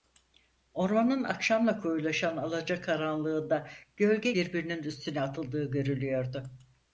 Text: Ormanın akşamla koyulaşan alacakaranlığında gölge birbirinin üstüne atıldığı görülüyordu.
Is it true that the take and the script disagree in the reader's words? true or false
false